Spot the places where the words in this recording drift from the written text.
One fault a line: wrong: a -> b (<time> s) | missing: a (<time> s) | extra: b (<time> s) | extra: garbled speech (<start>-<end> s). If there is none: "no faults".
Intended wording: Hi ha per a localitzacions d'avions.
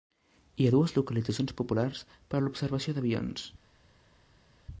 extra: dues localitzacions populars (0.7 s)
wrong: localitzacions -> l'observació (2.4 s)